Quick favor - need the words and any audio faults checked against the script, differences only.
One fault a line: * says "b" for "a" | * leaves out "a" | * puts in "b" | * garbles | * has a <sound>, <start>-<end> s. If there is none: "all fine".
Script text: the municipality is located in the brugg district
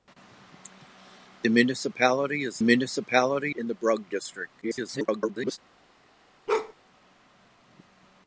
* says "municipality" for "located"
* garbles
* has a bark, 6.5-6.7 s